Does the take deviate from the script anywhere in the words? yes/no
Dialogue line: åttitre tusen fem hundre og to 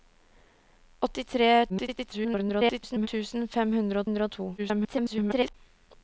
yes